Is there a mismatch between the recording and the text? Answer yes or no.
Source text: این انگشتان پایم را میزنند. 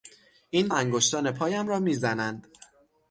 no